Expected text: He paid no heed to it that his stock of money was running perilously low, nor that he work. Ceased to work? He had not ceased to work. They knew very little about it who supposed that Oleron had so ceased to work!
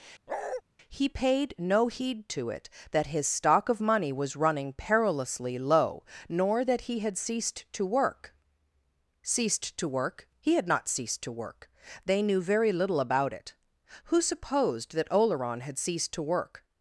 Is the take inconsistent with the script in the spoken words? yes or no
yes